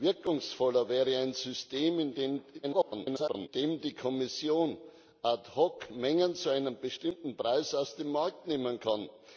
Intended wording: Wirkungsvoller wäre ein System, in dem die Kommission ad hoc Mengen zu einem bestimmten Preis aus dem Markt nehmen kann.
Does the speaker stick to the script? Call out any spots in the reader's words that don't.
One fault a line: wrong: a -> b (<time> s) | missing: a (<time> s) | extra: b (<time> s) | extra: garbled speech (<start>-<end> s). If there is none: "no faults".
extra: garbled speech (2.6-3.5 s)